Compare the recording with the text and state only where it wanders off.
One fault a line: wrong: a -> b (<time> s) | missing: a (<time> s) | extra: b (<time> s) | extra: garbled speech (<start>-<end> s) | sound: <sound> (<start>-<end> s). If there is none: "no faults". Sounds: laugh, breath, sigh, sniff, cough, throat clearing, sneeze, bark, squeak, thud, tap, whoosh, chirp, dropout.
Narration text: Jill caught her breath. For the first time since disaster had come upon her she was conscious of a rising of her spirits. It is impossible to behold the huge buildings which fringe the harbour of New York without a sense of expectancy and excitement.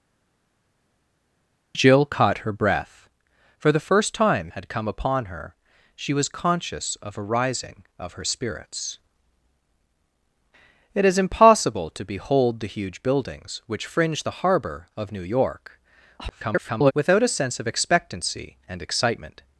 missing: since disaster (4.5 s)
extra: garbled speech (16.2-16.9 s)